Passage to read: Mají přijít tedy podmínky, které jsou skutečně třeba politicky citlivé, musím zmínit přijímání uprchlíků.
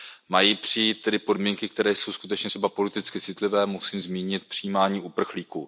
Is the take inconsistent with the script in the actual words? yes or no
no